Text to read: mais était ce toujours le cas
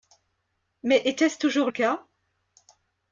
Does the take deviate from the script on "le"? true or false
true